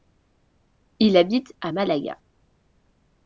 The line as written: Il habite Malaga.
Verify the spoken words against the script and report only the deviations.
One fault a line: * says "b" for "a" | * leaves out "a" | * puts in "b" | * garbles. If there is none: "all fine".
* puts in "à"